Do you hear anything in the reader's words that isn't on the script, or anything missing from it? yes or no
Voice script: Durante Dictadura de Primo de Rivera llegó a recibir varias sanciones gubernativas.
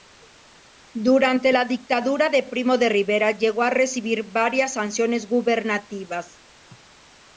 yes